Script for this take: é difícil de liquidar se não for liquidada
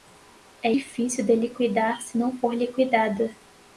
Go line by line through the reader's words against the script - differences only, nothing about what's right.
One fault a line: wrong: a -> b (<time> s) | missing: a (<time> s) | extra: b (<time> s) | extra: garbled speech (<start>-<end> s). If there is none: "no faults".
no faults